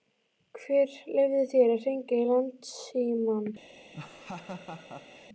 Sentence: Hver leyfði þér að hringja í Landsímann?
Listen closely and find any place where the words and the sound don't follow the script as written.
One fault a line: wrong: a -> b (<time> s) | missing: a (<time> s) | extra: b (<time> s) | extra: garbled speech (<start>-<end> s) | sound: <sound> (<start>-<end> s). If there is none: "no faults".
sound: laugh (3.9-5.3 s)